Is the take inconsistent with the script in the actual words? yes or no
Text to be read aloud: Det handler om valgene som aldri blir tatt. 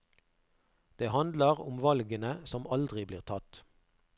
no